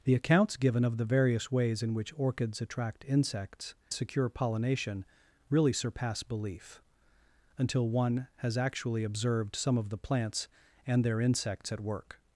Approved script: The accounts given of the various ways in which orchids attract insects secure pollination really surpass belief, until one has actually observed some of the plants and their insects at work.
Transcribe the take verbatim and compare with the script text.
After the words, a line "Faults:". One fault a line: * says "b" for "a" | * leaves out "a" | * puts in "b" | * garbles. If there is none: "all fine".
The accounts given of the various ways in which orchids attract insects secure pollination really surpass belief, until one has actually observed some of the plants and their insects at work.
Faults:
all fine